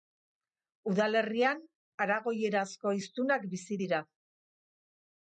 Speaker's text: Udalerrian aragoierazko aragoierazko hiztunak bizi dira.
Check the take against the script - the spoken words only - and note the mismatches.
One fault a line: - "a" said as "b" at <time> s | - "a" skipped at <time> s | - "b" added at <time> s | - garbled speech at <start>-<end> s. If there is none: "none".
- "aragoierazko" skipped at 3.0 s